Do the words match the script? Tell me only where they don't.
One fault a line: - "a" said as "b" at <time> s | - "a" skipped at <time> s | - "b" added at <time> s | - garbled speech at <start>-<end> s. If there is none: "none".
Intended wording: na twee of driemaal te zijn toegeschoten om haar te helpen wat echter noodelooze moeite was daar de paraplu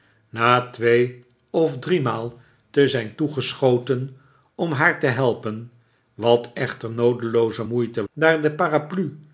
- "was" skipped at 8.1 s